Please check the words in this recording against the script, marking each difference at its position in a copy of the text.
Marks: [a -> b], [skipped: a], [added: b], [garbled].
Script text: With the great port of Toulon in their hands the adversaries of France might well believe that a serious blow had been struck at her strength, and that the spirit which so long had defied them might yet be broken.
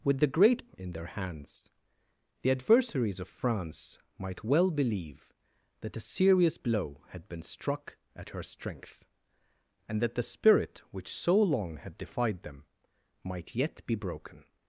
With the great [skipped: port of Toulon] in their hands the adversaries of France might well believe that a serious blow had been struck at her strength, and that the spirit which so long had defied them might yet be broken.